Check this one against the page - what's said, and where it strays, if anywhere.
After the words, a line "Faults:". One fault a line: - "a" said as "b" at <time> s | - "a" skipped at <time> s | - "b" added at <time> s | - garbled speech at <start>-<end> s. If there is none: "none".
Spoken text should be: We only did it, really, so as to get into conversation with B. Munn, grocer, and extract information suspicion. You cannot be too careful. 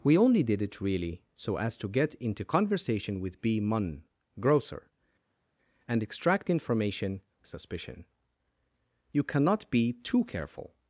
We only did it, really, so as to get into conversation with B. Munn, grocer, and extract information suspicion. You cannot be too careful.
Faults:
none